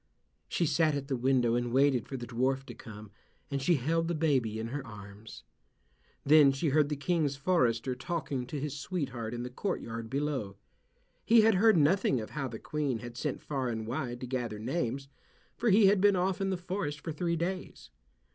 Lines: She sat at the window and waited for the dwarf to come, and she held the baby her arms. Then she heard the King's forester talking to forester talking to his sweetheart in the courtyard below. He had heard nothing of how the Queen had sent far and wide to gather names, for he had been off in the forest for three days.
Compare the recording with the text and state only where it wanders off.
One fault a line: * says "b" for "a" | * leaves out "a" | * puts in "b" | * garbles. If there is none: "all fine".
* puts in "in"
* leaves out "forester talking to"